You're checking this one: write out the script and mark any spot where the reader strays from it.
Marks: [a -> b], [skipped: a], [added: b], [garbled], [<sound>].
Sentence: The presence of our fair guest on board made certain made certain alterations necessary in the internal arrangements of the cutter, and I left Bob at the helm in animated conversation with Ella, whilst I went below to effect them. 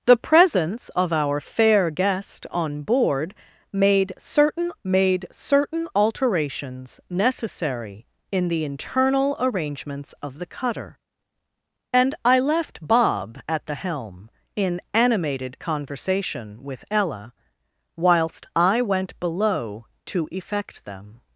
The presence of our fair guest on board made certain made certain alterations necessary in the internal arrangements of the cutter, and I left Bob at the helm in animated conversation with Ella, whilst I went below to effect them.